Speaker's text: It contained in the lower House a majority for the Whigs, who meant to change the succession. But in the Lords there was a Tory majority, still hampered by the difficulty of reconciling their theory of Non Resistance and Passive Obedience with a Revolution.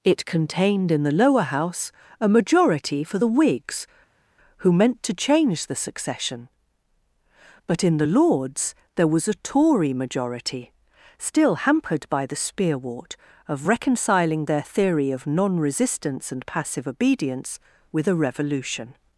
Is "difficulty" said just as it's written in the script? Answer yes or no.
no